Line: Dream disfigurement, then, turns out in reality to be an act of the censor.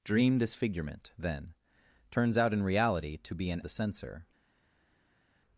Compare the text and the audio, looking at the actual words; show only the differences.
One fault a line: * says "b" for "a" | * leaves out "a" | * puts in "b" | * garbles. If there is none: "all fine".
* leaves out "act of"